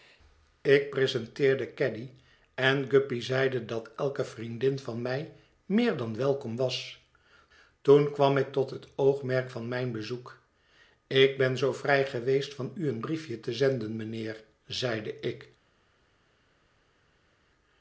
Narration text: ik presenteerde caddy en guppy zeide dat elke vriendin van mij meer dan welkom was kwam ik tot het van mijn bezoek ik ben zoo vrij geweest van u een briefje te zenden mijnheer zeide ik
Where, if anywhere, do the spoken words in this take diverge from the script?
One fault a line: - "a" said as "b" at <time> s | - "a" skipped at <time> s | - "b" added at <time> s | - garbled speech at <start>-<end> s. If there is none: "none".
- "toen" added at 7.8 s
- "oogmerk" added at 8.9 s